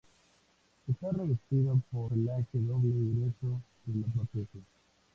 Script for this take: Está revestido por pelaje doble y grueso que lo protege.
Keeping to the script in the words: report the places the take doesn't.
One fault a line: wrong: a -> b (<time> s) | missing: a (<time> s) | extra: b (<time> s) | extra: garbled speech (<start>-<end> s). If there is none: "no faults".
no faults